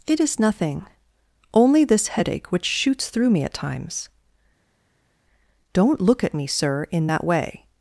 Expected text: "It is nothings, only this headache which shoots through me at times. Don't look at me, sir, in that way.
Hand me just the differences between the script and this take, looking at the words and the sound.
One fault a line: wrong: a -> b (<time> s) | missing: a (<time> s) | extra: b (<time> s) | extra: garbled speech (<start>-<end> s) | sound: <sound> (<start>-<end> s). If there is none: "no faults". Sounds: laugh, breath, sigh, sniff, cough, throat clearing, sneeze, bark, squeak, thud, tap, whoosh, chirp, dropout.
wrong: nothings -> nothing (0.4 s)